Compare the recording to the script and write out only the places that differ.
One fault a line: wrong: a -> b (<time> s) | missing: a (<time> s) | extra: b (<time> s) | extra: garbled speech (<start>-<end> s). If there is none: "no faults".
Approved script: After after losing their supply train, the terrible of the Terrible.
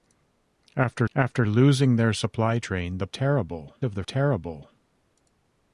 no faults